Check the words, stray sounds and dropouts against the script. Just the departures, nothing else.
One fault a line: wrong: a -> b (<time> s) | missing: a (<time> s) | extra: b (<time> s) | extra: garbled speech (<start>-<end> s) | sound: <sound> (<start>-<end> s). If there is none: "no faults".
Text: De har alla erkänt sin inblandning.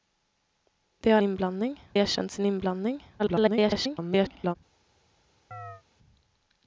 wrong: alla -> inblandning (1.2 s)
extra: garbled speech (3.2-4.6 s)
sound: chirp (5.5-5.8 s)